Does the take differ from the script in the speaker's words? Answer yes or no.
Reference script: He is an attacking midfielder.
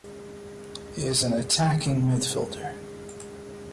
no